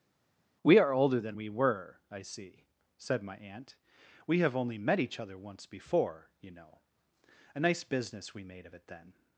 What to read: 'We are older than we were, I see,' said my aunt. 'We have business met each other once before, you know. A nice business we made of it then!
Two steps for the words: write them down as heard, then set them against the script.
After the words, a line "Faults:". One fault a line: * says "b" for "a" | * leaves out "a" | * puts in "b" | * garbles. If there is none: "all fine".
'We are older than we were, I see,' said my aunt. 'We have only met each other once before, you know. A nice business we made of it then!
Faults:
* says "only" for "business"